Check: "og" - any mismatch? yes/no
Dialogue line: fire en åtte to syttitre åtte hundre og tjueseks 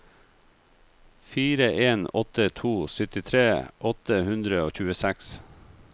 no